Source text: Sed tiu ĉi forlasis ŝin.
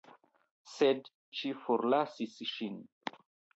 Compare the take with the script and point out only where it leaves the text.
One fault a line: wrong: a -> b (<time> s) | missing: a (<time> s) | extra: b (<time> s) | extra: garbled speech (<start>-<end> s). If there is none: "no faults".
missing: tiu (1.1 s)